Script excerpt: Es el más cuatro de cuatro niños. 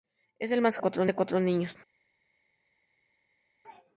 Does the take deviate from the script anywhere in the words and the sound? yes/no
no